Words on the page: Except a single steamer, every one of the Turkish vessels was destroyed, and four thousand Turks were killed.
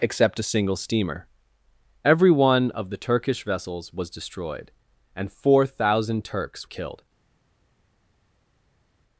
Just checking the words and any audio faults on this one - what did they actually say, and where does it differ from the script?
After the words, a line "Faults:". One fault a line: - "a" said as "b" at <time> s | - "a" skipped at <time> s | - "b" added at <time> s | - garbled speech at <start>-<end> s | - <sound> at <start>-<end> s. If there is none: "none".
Except a single steamer, every one of the Turkish vessels was destroyed, and four thousand Turks killed.
Faults:
- "were" skipped at 6.7 s